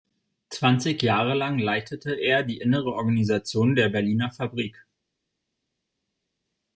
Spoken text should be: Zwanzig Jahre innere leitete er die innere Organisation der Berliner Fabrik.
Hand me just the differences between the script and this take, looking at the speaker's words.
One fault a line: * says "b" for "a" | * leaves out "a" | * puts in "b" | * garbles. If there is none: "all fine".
* says "lang" for "innere"